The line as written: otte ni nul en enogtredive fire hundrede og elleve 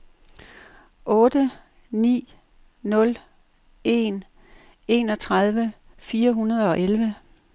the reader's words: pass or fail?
pass